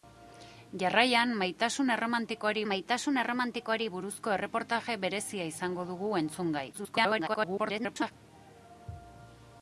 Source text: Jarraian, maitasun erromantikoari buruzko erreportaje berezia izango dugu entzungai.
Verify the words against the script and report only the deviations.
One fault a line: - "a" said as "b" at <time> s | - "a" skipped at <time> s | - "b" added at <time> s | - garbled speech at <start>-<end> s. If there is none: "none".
- "maitasun erromantikoari" added at 2.7 s
- garbled speech at 6.7-8.1 s